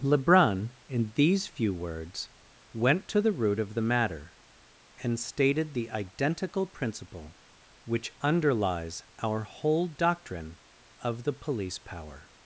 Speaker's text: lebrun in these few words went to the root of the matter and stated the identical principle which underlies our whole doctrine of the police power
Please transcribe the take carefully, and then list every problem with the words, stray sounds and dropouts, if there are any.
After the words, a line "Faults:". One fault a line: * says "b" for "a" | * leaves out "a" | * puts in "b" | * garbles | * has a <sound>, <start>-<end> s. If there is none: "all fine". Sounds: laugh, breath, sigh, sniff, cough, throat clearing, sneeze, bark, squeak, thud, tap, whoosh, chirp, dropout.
lebrun in these few words went to the root of the matter and stated the identical principle which underlies our whole doctrine of the police power
Faults:
all fine